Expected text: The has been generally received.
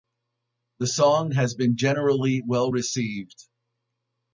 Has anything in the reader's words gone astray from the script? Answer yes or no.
yes